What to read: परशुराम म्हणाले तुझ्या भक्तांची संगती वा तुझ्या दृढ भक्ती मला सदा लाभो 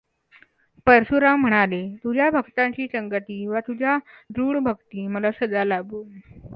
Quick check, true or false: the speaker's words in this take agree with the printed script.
true